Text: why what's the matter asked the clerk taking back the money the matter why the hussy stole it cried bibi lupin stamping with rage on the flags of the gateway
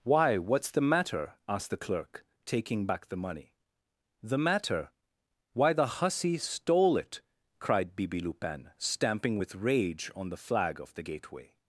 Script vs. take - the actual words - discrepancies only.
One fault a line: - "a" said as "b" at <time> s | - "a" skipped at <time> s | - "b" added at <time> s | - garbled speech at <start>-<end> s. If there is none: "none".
- "flags" said as "flag" at 10.4 s